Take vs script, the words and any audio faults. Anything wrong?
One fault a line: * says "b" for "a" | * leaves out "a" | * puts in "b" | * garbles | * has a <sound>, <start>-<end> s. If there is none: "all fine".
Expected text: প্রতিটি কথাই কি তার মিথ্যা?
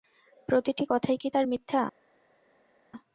all fine